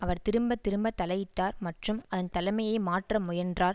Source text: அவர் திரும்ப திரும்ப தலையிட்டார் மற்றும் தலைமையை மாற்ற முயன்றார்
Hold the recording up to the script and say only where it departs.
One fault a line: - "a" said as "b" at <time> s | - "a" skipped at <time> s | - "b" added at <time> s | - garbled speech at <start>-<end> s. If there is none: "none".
- "அதன்" added at 2.1 s